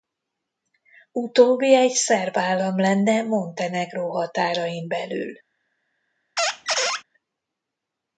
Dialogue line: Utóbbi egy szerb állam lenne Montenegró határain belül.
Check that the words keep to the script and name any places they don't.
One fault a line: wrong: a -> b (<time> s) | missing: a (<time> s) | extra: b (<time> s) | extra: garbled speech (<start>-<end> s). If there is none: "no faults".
no faults